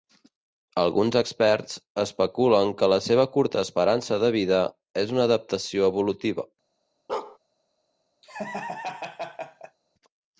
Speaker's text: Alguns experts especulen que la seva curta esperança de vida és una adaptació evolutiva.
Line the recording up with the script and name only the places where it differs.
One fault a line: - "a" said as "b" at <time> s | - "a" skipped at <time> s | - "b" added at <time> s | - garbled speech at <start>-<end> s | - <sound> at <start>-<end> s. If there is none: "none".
- bark at 7.1-7.4 s
- laugh at 8.2-9.8 s